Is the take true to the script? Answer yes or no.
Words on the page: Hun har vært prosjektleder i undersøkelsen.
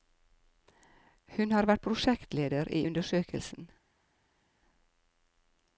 yes